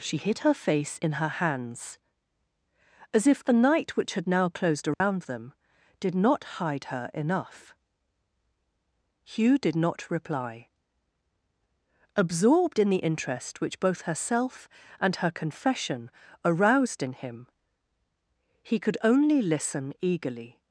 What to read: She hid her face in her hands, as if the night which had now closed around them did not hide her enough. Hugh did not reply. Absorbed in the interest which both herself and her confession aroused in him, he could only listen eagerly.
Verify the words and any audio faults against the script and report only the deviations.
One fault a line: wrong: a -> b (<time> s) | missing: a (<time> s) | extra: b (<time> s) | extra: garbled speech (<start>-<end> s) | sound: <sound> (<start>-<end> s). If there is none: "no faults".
sound: dropout (4.9-5.0 s)